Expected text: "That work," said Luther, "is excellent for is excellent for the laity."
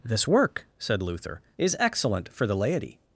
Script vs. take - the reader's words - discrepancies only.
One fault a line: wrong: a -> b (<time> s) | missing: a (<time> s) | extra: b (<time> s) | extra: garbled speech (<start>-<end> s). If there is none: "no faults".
wrong: That -> This (0.0 s)
missing: is excellent for (2.4 s)